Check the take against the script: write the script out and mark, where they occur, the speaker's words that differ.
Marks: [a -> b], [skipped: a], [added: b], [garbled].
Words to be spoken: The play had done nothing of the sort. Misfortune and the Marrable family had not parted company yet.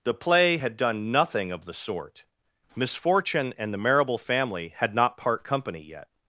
The play had done nothing of the sort. Misfortune and the Marrable family had not [parted -> part] company yet.